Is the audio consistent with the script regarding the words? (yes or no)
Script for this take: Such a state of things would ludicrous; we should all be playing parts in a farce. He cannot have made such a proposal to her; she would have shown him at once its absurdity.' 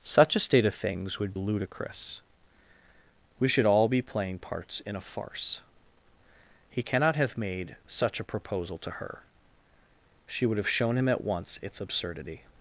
yes